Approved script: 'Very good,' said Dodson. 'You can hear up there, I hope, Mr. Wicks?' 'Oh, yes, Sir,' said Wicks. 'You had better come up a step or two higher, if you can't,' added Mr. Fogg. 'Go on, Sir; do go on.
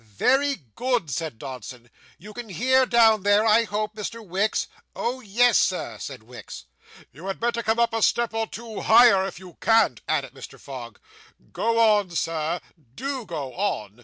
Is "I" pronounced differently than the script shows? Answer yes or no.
no